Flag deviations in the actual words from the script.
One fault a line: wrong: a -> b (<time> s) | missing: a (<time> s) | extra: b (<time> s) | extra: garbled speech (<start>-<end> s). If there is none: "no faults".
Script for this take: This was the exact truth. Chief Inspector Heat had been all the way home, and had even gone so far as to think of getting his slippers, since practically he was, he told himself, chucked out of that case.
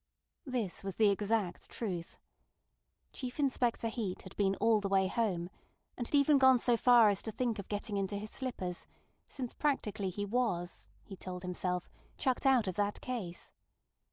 extra: into (8.0 s)